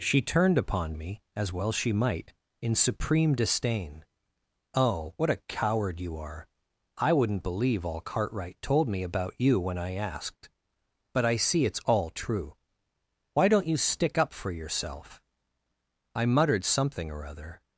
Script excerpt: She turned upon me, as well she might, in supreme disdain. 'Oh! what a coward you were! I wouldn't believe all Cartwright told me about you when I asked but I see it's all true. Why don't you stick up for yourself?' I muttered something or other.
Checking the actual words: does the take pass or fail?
fail